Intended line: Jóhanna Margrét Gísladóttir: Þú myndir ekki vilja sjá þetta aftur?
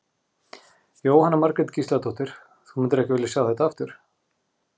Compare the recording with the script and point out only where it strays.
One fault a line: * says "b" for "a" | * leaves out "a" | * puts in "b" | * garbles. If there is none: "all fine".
all fine